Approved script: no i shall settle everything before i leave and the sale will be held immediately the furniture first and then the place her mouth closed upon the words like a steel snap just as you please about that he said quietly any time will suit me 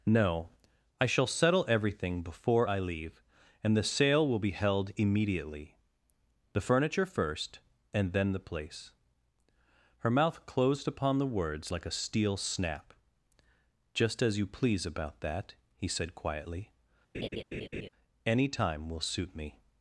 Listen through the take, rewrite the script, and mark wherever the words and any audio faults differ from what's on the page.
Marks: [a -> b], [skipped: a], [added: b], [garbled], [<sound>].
no i shall settle everything before i leave and the sale will be held immediately the furniture first and then the place her mouth closed upon the words like a steel snap just as you please about that he said quietly [laugh] any time will suit me